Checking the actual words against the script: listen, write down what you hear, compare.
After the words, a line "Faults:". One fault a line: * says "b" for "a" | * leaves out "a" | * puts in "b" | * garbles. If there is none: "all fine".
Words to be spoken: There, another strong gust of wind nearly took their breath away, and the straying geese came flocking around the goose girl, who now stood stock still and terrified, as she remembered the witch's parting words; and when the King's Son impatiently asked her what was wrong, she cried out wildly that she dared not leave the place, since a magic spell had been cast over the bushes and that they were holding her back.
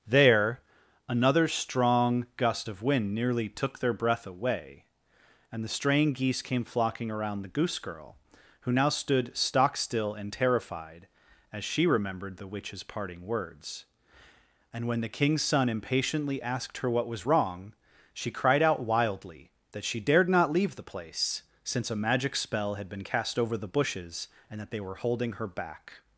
There, another strong gust of wind nearly took their breath away, and the straying geese came flocking around the goose girl, who now stood stock still and terrified, as she remembered the witch's parting words; and when the King's Son impatiently asked her what was wrong, she cried out wildly that she dared not leave the place, since a magic spell had been cast over the bushes and that they were holding her back.
Faults:
all fine